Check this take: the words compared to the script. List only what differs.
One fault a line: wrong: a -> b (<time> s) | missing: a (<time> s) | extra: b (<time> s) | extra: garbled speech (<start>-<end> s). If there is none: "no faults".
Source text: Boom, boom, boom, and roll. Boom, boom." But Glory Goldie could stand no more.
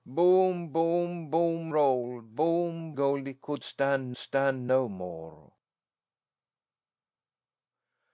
missing: and (1.7 s)
missing: boom But Glory (3.0 s)
extra: stand (4.2 s)